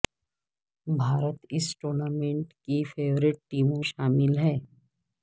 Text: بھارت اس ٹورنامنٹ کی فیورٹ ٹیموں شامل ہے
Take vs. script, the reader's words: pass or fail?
pass